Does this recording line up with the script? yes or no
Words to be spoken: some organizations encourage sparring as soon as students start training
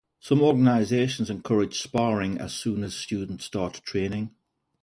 yes